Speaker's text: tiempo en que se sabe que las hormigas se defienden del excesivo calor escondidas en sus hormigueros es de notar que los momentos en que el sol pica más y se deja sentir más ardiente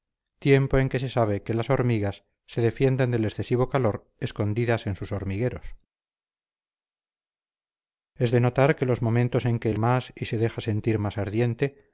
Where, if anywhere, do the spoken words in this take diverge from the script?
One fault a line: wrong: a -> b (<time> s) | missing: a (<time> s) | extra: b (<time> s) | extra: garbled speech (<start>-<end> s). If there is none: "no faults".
missing: sol pica (9.8 s)